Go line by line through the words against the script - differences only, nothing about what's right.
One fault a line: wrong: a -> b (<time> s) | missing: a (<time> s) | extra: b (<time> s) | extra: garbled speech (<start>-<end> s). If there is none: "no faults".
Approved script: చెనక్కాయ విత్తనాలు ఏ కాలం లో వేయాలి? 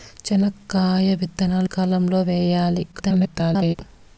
missing: ఏ (1.7 s)
extra: garbled speech (2.9-3.8 s)